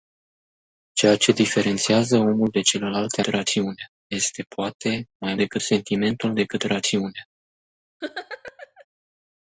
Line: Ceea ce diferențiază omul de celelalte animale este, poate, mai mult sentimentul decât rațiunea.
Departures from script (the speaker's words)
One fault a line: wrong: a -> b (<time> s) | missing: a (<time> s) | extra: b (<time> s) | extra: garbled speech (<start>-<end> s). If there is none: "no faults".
wrong: animale -> rațiunea (3.3 s)
wrong: mult -> decât (5.4 s)